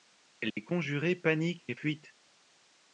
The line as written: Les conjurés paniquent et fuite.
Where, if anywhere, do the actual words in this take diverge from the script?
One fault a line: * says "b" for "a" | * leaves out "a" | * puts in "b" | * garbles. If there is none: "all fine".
all fine